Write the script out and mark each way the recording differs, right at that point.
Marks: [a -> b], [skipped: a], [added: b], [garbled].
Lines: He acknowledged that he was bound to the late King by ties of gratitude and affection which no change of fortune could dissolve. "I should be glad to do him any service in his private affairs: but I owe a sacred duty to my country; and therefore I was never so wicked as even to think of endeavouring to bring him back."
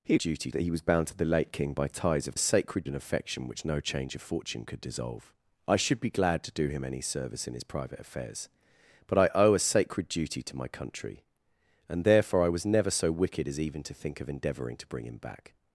He [acknowledged -> duty] that he was bound to the late King by ties of [gratitude -> sacred] and affection which no change of fortune could dissolve. "I should be glad to do him any service in his private affairs: but I owe a sacred duty to my country; and therefore I was never so wicked as even to think of endeavouring to bring him back."